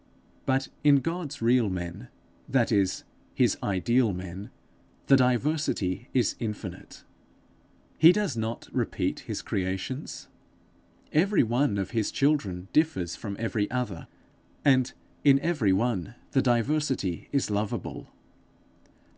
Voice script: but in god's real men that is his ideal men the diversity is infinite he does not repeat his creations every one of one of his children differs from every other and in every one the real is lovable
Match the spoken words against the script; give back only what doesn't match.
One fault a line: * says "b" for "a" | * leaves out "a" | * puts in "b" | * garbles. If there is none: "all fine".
* leaves out "one of"
* says "diversity" for "real"